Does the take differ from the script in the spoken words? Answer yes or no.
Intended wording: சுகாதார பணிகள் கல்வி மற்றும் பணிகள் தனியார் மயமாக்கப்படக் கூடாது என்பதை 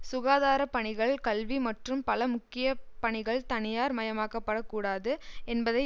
yes